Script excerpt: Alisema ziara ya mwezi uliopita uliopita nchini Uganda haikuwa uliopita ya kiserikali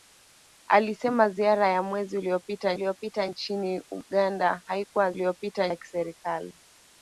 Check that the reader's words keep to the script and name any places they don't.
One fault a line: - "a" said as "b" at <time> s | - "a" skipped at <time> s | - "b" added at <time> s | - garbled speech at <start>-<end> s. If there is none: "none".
none